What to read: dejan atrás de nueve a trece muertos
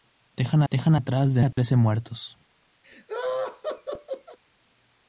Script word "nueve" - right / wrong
wrong